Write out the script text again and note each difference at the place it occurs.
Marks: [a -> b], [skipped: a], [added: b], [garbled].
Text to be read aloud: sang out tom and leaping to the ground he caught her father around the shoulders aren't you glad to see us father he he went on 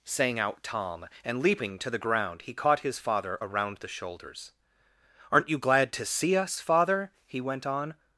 sang out tom and leaping to the ground he caught [her -> his] father around the shoulders aren't you glad to see us father he [skipped: he] went on